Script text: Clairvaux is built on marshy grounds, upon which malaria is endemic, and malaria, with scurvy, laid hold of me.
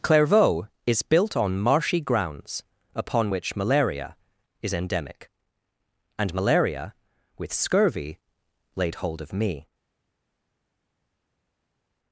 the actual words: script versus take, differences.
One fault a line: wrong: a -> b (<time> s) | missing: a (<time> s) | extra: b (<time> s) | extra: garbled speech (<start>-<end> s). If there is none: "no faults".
no faults